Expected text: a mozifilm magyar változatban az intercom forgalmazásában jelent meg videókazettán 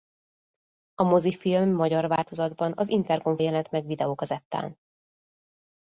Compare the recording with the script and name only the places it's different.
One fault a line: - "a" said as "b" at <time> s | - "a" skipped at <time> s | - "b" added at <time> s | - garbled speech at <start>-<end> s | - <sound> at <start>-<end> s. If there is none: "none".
- "forgalmazásában" skipped at 3.4 s